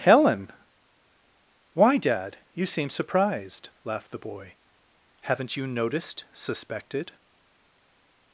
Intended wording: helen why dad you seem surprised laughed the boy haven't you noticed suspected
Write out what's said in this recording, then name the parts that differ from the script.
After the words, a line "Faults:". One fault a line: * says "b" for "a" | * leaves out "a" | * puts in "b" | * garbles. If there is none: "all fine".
helen why dad you seem surprised laughed the boy haven't you noticed suspected
Faults:
all fine